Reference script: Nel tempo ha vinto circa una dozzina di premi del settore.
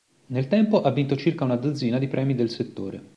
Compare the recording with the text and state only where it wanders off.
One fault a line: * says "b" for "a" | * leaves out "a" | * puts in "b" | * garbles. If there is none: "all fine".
all fine